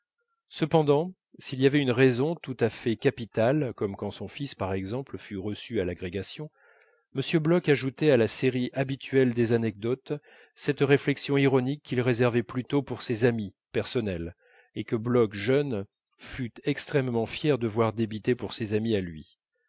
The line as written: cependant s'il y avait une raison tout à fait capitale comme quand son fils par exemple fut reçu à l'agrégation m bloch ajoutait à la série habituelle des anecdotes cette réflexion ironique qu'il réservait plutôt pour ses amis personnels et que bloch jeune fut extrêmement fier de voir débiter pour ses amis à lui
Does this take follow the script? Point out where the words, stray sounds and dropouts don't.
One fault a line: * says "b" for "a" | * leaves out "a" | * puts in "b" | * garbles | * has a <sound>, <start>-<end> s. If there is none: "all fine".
all fine